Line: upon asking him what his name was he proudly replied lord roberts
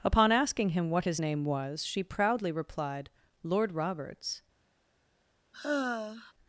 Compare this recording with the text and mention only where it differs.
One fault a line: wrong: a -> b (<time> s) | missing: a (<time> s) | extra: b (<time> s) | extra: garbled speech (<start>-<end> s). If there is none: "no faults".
wrong: he -> she (1.8 s)